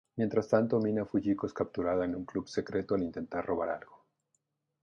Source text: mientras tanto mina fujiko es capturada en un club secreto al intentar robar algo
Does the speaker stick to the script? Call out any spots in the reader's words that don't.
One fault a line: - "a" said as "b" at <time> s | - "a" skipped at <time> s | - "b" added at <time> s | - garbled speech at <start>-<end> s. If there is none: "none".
none